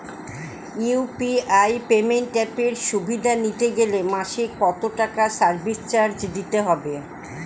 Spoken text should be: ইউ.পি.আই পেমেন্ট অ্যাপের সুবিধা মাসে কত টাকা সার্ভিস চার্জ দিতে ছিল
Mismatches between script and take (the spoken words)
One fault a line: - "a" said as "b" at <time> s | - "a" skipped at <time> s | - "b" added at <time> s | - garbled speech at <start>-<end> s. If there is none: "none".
- "নিতে গেলে" added at 3.4 s
- "ছিল" said as "হবে" at 6.7 s